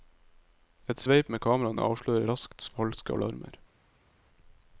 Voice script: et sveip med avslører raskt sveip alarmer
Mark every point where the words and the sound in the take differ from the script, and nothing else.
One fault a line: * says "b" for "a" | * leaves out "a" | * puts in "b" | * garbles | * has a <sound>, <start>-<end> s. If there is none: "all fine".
* puts in "kameraene"
* says "falske" for "sveip"